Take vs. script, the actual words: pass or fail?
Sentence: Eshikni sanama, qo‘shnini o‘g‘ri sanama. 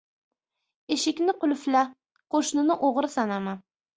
fail